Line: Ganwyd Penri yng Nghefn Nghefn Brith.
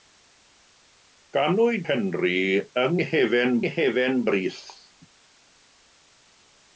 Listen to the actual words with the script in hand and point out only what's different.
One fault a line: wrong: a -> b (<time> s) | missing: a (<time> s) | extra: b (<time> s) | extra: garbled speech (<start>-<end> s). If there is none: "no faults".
no faults